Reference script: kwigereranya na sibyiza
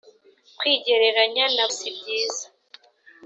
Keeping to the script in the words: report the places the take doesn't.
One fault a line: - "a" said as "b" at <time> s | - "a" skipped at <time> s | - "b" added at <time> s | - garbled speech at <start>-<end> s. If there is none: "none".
none